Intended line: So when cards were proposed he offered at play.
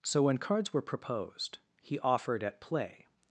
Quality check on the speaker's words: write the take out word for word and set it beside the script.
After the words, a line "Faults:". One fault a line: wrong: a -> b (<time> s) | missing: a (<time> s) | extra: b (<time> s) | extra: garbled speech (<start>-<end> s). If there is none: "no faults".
So when cards were proposed he offered at play.
Faults:
no faults